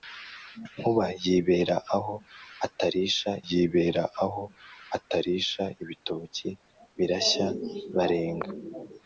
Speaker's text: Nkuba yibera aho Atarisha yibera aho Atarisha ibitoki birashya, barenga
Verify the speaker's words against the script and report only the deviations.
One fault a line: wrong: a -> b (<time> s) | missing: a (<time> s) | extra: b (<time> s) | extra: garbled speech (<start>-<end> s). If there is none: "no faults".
no faults